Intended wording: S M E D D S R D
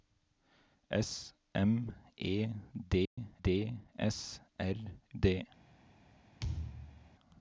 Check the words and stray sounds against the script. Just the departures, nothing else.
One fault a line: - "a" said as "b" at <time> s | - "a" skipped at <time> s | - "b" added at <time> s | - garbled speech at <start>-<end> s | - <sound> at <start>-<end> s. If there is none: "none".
- dropout at 3.1-3.2 s
- thud at 6.4-7.1 s